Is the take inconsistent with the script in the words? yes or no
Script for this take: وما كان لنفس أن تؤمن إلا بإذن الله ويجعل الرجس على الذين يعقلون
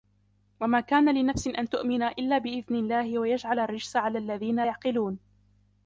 no